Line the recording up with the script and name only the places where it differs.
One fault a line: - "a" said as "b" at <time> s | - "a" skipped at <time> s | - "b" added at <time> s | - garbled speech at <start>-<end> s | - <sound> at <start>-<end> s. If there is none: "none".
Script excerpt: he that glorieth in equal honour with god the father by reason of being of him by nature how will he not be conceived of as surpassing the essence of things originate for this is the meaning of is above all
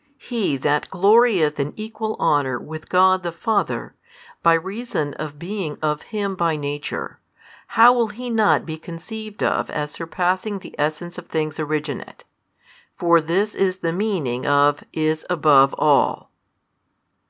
none